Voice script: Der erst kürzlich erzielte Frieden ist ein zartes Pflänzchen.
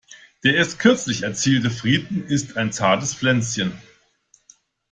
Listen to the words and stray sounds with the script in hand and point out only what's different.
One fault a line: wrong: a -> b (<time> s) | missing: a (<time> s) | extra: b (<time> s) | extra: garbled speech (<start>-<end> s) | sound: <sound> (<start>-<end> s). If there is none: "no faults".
no faults